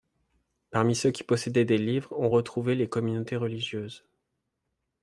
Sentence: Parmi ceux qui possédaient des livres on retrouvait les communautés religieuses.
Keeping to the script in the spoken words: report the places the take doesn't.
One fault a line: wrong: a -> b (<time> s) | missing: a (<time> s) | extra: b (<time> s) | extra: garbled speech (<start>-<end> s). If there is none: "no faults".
no faults